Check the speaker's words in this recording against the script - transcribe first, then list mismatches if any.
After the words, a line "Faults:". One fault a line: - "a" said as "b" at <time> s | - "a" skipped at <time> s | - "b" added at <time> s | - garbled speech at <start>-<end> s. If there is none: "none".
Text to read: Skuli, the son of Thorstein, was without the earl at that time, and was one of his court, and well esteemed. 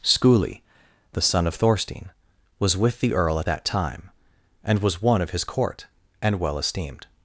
Skuli, the son of Thorstein, was with the earl at that time, and was one of his court, and well esteemed.
Faults:
- "without" said as "with" at 2.8 s